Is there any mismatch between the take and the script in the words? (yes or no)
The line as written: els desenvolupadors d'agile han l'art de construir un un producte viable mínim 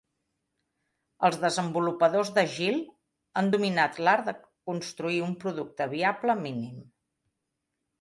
yes